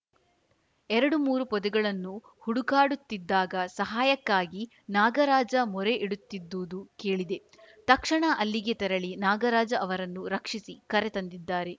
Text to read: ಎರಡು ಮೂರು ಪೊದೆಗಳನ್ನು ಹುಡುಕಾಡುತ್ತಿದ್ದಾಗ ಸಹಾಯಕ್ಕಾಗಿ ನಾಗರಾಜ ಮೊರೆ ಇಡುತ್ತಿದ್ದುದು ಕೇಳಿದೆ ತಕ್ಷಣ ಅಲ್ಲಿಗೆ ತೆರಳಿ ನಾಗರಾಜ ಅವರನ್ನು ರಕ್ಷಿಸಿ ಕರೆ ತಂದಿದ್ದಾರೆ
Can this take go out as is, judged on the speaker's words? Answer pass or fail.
pass